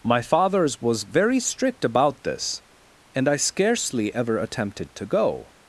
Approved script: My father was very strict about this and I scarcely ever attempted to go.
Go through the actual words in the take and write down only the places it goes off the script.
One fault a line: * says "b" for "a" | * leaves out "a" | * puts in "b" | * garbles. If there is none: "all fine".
* says "fathers" for "father"